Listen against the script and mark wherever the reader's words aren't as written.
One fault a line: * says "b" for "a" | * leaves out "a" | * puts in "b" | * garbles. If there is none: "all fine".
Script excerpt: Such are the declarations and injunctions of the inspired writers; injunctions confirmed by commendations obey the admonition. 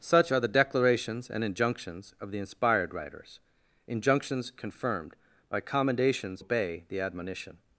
all fine